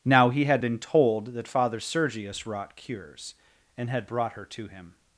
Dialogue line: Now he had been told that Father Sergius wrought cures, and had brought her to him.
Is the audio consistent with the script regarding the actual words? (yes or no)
yes